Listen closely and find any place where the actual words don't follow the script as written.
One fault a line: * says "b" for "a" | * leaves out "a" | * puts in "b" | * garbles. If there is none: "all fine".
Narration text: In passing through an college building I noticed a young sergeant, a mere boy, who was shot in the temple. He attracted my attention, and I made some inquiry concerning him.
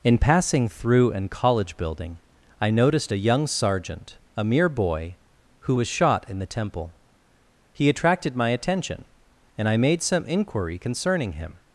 all fine